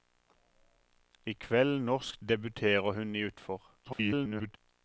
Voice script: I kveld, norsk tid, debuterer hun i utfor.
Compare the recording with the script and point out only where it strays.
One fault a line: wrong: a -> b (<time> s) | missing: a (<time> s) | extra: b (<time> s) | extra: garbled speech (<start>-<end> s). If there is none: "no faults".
missing: tid (2.2 s)
extra: garbled speech (3.8-4.6 s)